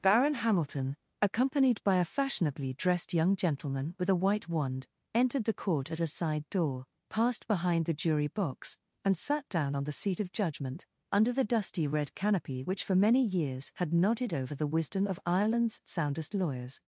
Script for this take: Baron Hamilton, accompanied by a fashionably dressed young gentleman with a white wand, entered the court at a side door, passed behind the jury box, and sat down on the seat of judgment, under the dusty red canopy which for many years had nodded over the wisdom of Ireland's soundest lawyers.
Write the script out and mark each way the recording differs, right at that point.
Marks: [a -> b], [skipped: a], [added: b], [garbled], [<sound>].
Baron Hamilton, accompanied by a fashionably dressed young gentleman with a white wand, entered the court at a side door, passed behind the jury box, and sat down on the seat of judgment, under the dusty red canopy which for many years had nodded over the wisdom of Ireland's soundest lawyers.